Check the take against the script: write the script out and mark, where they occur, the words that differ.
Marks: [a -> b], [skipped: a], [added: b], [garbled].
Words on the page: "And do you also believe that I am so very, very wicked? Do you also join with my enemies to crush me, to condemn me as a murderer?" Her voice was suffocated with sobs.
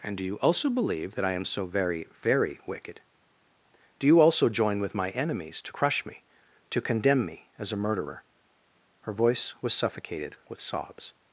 "And do you also believe that I am so very, very wicked? Do you also join with my enemies to crush me, to condemn me as a murderer?" Her voice was suffocated with sobs.